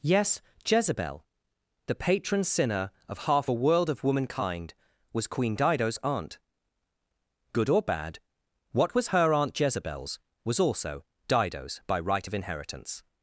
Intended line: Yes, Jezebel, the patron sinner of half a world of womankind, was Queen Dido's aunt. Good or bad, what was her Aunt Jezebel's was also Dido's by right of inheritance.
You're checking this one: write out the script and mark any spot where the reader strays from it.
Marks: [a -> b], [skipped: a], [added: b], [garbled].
Yes, Jezebel, the patron sinner of half a world of womankind, was Queen Dido's aunt. Good or bad, what was her Aunt Jezebel's was also Dido's by right of inheritance.